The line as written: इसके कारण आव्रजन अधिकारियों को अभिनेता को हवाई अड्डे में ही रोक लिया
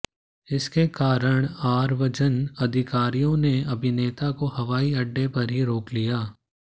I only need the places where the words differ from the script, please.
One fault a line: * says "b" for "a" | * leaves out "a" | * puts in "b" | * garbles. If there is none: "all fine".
* says "ने" for "को"
* says "पर" for "में"